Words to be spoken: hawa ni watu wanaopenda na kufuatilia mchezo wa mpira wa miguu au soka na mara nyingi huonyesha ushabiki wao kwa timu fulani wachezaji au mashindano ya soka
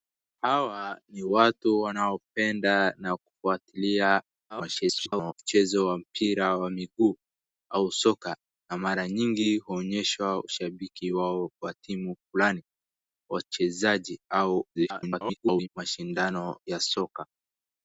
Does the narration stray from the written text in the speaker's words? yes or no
yes